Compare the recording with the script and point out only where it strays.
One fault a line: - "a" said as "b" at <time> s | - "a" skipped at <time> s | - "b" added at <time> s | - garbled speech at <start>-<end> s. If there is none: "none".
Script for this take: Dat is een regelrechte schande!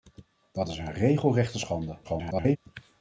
- garbled speech at 2.0-2.6 s